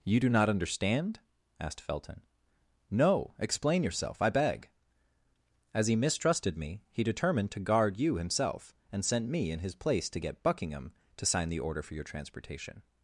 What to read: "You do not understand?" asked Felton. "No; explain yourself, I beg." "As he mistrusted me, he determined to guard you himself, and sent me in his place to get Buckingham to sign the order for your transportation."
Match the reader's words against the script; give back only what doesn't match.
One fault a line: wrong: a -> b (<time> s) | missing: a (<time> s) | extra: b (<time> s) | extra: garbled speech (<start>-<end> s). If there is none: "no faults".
no faults